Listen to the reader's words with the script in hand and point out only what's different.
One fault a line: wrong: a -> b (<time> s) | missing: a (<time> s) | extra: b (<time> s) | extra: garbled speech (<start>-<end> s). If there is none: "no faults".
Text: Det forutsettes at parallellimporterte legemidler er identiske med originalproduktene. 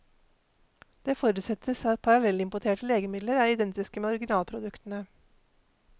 no faults